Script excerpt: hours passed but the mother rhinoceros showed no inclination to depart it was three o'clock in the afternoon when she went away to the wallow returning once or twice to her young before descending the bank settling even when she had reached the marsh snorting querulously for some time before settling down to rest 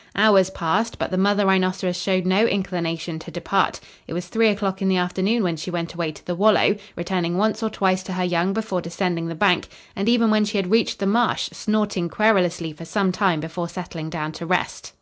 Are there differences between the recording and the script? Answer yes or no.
yes